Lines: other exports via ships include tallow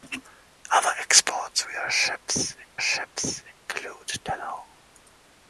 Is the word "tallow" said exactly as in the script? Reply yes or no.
yes